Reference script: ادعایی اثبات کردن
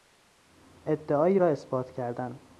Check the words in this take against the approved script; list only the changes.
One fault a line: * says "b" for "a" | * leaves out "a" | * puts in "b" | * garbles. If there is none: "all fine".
* puts in "را"